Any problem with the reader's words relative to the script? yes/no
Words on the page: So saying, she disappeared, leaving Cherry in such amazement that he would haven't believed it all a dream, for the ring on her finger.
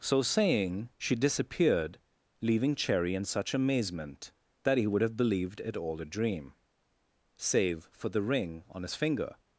yes